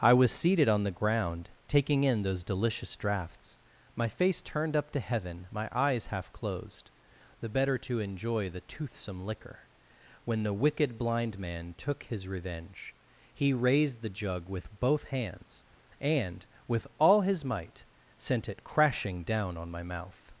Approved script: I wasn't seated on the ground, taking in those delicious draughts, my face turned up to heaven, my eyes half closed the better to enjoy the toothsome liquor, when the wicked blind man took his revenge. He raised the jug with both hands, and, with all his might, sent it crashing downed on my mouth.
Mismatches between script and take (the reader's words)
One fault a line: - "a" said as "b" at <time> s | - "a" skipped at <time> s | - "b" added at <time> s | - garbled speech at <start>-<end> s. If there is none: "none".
- "wasn't" said as "was" at 0.1 s
- "downed" said as "down" at 19.2 s